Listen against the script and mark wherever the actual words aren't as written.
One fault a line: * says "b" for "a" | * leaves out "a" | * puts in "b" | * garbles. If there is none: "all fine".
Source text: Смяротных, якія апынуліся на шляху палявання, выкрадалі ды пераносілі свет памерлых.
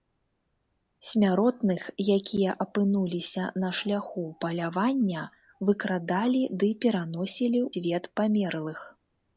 all fine